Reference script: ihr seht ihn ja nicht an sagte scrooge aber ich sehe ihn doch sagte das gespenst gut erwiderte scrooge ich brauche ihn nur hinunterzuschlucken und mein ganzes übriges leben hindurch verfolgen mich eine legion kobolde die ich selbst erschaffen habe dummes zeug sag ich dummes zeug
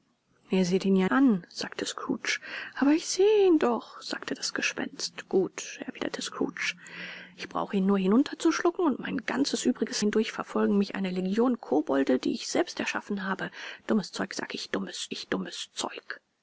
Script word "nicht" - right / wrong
wrong